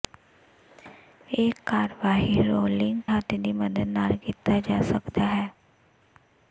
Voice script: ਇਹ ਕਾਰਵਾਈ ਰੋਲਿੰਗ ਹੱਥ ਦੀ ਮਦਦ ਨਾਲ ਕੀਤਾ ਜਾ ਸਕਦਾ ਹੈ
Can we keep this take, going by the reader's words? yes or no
yes